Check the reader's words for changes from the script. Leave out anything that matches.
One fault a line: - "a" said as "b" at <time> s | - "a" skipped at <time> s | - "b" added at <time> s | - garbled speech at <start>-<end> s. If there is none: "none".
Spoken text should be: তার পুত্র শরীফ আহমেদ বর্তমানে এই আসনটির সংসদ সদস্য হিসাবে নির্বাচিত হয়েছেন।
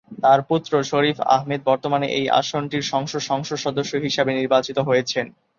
- "সংসদ" added at 3.3 s